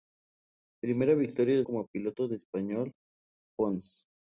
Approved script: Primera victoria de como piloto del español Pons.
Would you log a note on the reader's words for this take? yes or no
no